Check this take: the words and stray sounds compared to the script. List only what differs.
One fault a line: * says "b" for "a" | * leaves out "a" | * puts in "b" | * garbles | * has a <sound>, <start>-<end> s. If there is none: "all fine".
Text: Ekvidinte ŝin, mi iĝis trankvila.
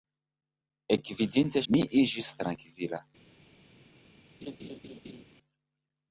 * leaves out "ŝin"
* has a laugh, 4.4-5.2 s